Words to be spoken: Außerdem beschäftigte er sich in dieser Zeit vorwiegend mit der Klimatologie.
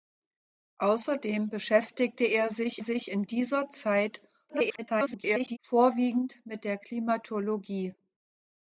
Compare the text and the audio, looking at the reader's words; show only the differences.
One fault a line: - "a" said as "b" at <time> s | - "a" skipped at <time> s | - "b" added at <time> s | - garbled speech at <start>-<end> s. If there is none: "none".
- "sich" added at 2.8 s
- garbled speech at 4.5-5.6 s